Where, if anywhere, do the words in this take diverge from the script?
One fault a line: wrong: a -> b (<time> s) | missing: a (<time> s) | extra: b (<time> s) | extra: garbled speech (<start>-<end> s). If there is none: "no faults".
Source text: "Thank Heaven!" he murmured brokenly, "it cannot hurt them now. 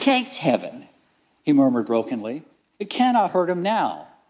wrong: them -> him (3.5 s)